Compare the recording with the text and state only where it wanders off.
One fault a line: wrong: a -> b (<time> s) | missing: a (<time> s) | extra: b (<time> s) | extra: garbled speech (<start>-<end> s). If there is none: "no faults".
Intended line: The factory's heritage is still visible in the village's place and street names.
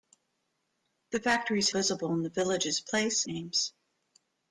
missing: heritage is still (1.7 s)
missing: and street (3.2 s)